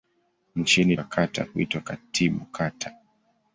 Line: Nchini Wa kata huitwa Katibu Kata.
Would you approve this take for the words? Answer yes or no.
yes